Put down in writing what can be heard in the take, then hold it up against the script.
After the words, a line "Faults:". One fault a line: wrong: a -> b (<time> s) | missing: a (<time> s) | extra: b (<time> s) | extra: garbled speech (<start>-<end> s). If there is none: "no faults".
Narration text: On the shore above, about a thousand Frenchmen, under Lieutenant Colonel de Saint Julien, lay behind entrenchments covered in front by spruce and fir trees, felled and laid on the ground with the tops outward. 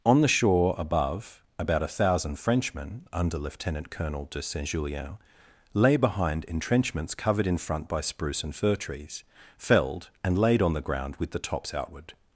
On the shore above, about a thousand Frenchmen, under Lieutenant Colonel de Saint Julien, lay behind entrenchments covered in front by spruce and fir trees, felled and laid on the ground with the tops outward.
Faults:
no faults